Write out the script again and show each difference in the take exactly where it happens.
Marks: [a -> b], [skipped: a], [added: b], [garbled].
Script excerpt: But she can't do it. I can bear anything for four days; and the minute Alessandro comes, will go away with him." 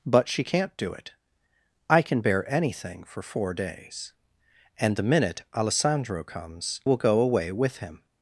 But she can't do it. I can bear anything for four days; and the minute Alessandro comes, will go away with him."